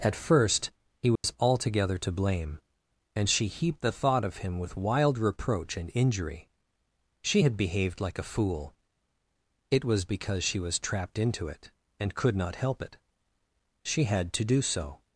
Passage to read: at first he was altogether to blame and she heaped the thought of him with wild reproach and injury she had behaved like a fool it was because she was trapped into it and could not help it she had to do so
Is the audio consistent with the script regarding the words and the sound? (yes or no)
no